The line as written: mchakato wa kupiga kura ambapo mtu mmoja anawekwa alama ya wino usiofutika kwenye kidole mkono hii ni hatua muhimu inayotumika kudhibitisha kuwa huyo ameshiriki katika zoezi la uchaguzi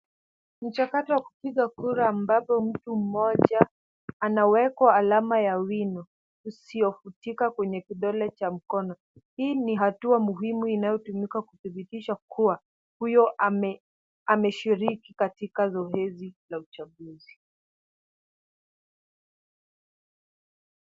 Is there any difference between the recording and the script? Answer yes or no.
yes